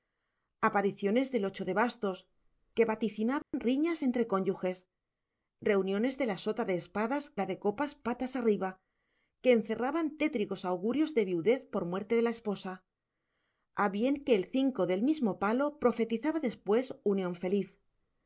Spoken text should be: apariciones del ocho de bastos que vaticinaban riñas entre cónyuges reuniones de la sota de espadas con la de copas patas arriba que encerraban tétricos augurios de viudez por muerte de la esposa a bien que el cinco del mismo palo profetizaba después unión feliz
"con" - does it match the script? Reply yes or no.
no